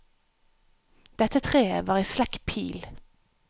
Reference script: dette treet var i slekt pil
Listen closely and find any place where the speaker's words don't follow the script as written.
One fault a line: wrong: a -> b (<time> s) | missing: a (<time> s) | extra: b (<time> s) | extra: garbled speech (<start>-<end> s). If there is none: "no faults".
no faults